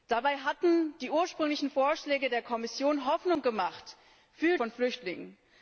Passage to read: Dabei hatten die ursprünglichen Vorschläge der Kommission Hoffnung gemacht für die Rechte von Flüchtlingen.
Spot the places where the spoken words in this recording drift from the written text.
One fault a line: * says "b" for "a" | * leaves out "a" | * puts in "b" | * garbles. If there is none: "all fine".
* leaves out "die Rechte"